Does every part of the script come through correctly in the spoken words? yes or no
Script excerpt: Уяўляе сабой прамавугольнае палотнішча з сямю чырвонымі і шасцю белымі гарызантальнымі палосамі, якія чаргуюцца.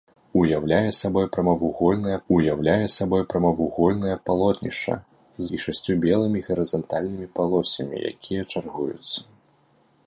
no